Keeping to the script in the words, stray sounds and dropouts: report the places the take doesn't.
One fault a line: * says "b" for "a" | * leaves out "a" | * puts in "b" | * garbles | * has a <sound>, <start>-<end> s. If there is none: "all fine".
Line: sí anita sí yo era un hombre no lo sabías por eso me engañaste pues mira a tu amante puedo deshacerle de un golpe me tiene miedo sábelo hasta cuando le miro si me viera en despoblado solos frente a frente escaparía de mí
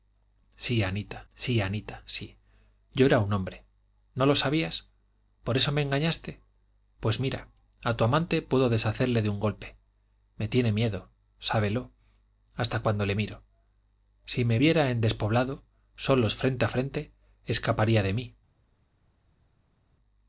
* puts in "anita sí"